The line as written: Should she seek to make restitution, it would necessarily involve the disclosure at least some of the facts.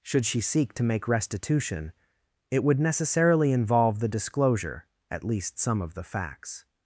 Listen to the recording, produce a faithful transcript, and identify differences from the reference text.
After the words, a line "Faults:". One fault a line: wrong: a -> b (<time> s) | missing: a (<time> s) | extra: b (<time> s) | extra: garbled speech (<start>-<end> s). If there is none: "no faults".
Should she seek to make restitution, it would necessarily involve the disclosure at least some of the facts.
Faults:
no faults